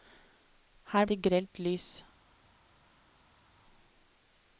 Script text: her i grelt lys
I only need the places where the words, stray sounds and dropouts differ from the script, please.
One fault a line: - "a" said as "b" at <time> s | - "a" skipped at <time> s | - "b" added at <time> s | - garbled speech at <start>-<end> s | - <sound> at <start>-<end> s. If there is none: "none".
none